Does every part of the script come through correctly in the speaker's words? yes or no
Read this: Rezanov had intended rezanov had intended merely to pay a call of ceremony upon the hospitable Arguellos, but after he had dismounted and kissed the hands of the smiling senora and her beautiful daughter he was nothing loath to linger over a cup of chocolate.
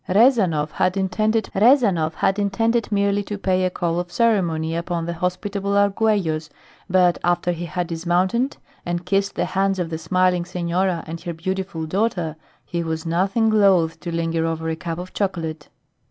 yes